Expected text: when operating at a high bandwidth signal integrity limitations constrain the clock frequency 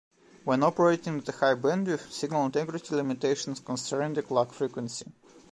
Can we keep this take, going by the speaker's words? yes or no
yes